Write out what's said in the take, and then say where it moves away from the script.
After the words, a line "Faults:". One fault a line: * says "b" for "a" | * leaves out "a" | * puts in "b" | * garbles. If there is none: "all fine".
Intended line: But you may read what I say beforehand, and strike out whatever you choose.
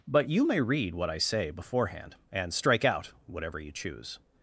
But you may read what I say beforehand, and strike out whatever you choose.
Faults:
all fine